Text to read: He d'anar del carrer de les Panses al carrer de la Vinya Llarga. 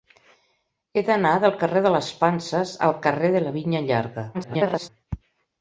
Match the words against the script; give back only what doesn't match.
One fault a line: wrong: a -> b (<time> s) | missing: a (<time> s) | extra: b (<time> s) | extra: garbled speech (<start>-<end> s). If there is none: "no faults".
extra: garbled speech (4.3-4.9 s)